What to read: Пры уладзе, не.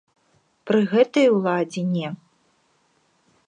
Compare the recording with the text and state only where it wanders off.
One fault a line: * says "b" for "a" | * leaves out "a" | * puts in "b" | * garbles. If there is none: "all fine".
* puts in "гэтай"